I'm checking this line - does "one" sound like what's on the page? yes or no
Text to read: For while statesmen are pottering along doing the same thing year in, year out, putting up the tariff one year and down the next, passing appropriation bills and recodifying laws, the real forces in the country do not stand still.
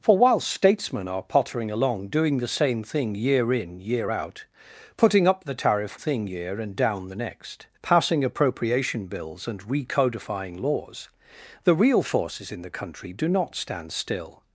no